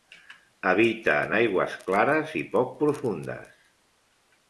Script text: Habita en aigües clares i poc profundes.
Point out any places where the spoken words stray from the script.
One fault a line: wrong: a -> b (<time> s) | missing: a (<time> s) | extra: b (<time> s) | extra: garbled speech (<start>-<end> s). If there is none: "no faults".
no faults